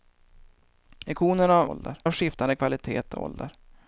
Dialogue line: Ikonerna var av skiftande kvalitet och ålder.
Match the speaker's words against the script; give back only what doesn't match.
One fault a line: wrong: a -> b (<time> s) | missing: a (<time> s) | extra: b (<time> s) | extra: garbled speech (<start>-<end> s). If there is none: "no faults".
wrong: var -> ålder (1.7 s)